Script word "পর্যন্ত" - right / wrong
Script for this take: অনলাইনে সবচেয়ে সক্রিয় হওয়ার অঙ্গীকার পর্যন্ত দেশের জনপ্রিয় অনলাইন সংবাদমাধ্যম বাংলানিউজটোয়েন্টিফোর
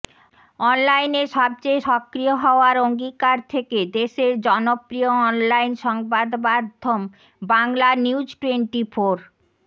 wrong